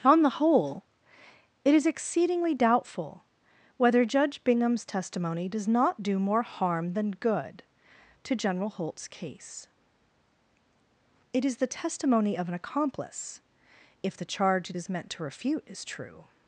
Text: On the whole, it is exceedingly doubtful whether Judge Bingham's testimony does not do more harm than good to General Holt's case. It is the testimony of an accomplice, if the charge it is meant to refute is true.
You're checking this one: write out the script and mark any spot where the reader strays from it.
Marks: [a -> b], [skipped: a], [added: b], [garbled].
On the whole, it is exceedingly doubtful whether Judge Bingham's testimony does not do more harm than good to General Holt's case. It is the testimony of an accomplice, if the charge it is meant to refute is true.